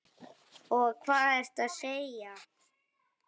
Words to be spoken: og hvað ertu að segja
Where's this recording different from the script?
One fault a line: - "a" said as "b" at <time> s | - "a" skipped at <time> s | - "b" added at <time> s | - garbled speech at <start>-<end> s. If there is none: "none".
none